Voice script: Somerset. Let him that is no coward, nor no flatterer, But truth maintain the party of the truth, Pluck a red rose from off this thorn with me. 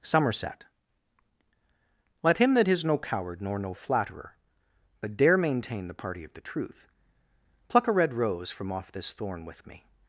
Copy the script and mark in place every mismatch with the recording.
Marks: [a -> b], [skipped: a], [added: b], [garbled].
Somerset. Let him that is no coward, nor no flatterer, But [truth -> dare] maintain the party of the truth, Pluck a red rose from off this thorn with me.